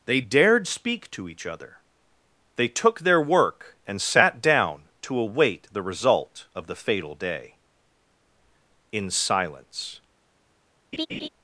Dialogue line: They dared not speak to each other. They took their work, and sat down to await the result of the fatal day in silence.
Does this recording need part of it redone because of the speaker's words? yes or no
yes